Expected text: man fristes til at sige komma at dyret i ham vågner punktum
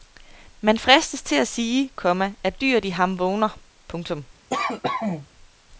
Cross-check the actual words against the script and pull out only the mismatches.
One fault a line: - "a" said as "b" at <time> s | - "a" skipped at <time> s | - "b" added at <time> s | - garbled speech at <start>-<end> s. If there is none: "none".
none